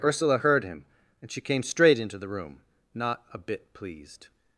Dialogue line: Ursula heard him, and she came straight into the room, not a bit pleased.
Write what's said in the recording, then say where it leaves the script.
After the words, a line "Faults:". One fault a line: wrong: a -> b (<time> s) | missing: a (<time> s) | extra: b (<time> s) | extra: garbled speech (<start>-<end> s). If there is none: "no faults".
Ursula heard him, and she came straight into the room, not a bit pleased.
Faults:
no faults